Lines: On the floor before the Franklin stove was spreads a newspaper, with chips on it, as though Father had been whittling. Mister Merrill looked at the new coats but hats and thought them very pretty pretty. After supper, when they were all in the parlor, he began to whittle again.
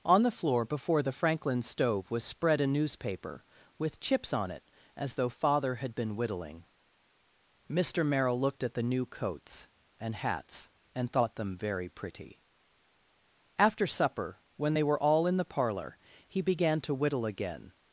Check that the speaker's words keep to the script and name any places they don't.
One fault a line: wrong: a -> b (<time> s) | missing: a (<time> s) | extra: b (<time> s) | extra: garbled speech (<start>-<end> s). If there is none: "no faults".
wrong: spreads -> spread (2.2 s)
wrong: but -> and (10.0 s)
missing: pretty (12.4 s)